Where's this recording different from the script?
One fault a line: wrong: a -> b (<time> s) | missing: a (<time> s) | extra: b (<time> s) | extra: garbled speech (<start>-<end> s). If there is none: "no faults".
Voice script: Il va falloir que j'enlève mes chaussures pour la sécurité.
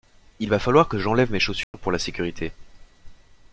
no faults